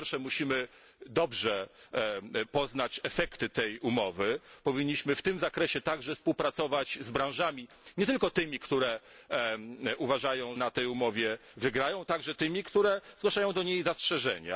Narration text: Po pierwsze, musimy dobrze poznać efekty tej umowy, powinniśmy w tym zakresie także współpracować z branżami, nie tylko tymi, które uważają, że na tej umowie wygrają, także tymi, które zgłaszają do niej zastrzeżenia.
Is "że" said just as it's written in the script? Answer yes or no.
no